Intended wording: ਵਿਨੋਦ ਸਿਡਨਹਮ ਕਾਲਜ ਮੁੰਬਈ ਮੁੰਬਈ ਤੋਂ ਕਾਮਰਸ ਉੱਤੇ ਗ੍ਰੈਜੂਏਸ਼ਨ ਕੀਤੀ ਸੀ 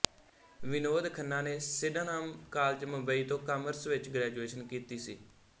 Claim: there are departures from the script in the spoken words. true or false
true